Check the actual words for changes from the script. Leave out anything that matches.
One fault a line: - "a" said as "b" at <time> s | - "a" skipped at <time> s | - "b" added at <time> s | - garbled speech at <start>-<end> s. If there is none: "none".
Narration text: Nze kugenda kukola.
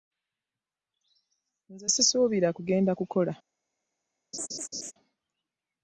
- "sisuubira" added at 1.9 s